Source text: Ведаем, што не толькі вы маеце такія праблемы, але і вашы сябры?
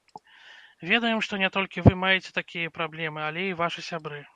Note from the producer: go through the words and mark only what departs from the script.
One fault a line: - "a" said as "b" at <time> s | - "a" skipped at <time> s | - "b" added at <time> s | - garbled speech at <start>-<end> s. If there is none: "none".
none